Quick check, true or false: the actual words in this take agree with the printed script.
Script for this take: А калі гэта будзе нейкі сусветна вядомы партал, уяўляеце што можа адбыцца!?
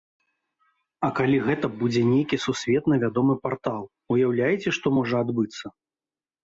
true